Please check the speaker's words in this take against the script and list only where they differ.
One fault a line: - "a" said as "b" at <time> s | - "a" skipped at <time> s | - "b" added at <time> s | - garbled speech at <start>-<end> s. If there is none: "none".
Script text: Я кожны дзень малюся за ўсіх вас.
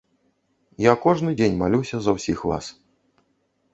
none